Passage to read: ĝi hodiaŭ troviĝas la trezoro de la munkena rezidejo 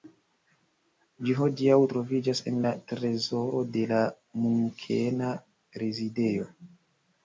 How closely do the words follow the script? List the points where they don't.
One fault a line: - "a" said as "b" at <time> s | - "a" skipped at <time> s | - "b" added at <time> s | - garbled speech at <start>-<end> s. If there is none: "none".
- "en" added at 2.5 s